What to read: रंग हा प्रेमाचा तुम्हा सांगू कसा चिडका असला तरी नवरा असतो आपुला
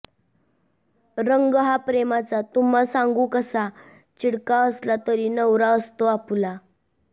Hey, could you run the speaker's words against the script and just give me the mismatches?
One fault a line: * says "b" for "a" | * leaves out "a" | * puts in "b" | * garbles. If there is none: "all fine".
all fine